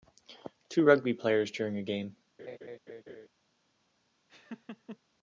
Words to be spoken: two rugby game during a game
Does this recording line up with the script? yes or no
no